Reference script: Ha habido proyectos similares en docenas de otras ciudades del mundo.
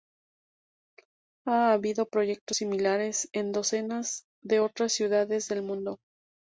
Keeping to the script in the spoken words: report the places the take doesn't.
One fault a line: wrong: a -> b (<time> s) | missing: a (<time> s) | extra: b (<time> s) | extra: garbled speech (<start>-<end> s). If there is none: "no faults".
no faults